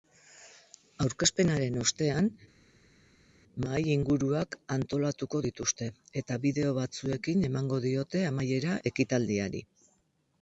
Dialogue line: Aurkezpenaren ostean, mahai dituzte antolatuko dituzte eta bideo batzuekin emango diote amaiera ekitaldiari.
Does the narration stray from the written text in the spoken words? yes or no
yes